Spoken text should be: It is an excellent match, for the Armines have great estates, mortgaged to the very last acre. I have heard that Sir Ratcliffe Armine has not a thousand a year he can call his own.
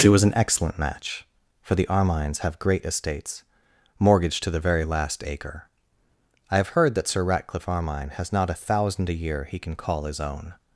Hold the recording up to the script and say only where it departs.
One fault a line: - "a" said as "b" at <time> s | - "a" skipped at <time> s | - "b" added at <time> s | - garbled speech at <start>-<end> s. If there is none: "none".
- "is" said as "was" at 0.1 s